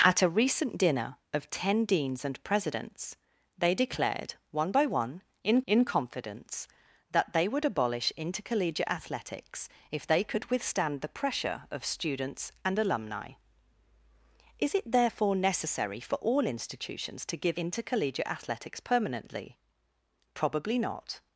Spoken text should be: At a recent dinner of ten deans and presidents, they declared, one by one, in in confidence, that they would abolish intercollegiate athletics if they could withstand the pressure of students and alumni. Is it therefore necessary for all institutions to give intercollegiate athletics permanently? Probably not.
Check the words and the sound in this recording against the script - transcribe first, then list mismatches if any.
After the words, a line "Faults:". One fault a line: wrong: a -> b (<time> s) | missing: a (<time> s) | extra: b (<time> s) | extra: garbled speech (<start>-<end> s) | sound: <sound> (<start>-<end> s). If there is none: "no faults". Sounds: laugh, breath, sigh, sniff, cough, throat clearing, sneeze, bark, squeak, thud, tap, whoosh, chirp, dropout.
At a recent dinner of ten deans and presidents, they declared, one by one, in in confidence, that they would abolish intercollegiate athletics if they could withstand the pressure of students and alumni. Is it therefore necessary for all institutions to give intercollegiate athletics permanently? Probably not.
Faults:
no faults